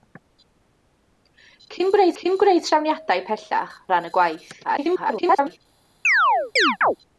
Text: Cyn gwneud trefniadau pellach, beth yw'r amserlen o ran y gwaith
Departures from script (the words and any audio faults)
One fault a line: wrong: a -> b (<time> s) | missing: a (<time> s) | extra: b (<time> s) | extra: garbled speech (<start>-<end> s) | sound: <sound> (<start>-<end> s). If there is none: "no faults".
extra: cyn gwneud (2.2 s)
missing: beth yw'r amserlen (3.8 s)
extra: garbled speech (4.6-5.6 s)
sound: chirp (6.0-7.0 s)